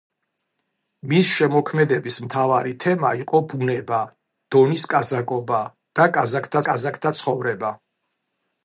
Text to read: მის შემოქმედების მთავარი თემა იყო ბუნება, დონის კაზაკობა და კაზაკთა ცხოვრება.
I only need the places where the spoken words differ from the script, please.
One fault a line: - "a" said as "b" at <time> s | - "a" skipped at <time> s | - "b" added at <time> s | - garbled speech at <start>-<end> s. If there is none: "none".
- "კაზაკთა" added at 6.7 s